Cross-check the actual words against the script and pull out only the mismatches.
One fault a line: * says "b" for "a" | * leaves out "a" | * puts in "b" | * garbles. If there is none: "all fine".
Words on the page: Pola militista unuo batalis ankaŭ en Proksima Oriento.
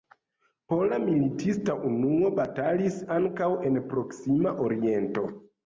all fine